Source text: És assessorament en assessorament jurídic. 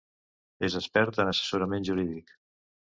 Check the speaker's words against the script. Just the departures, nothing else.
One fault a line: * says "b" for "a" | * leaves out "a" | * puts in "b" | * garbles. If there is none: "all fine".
* says "expert" for "assessorament"